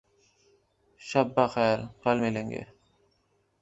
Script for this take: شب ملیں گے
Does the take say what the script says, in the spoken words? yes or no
no